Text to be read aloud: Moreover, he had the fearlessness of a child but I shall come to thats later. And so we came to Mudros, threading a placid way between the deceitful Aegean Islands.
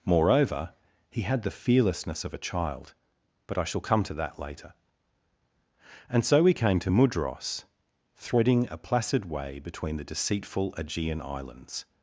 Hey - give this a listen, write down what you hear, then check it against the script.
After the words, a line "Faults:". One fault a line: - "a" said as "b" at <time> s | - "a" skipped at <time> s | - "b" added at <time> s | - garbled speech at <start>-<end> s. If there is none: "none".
Moreover, he had the fearlessness of a child but I shall come to that later. And so we came to Mudros, threading a placid way between the deceitful Aegean Islands.
Faults:
- "thats" said as "that" at 4.1 s